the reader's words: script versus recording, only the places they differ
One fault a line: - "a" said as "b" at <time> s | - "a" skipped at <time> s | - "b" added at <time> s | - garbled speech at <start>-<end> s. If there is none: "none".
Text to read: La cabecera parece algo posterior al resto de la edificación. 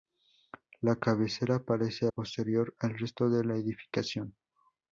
- "algo" skipped at 2.1 s